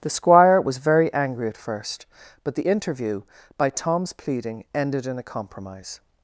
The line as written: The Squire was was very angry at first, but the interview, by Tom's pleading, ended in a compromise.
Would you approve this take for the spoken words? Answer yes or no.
no